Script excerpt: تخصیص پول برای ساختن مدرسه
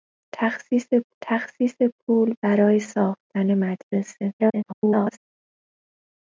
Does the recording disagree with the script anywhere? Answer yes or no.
yes